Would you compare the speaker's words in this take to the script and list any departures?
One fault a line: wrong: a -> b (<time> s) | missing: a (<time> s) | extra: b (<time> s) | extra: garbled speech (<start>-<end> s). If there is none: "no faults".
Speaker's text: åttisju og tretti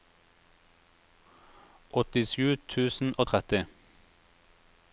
extra: tusen (2.8 s)